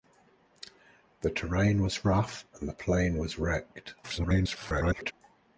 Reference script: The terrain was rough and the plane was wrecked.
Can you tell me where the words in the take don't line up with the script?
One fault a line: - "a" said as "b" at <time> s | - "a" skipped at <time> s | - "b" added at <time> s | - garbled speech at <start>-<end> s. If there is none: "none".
- garbled speech at 4.0-5.1 s